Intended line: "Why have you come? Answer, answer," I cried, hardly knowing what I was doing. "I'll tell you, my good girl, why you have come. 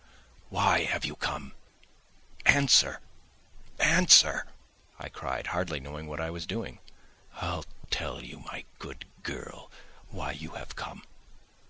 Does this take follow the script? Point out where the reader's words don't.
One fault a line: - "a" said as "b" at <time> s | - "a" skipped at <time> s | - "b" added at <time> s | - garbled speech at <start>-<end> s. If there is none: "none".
none